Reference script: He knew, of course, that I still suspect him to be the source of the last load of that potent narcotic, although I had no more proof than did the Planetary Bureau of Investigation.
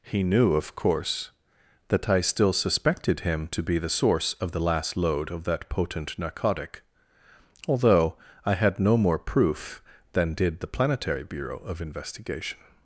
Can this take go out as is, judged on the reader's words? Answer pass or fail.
fail